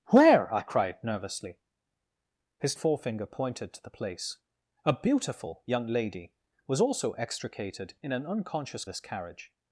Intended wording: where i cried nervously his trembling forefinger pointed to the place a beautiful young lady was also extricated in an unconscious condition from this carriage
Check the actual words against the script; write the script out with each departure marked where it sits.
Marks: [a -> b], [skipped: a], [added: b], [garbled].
where i cried nervously his [skipped: trembling] forefinger pointed to the place a beautiful young lady was also extricated in an unconscious [skipped: condition from] this carriage